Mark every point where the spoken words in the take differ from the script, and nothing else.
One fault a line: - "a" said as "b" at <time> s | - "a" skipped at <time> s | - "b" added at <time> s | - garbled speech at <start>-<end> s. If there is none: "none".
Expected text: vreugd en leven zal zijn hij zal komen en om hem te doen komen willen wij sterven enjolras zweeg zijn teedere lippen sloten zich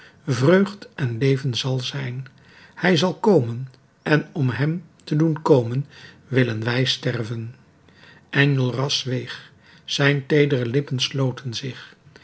none